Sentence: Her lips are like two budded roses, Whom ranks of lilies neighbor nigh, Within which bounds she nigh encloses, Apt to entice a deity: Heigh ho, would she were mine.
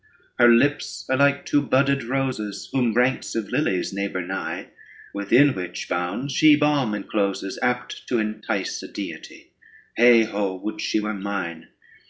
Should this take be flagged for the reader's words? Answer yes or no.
yes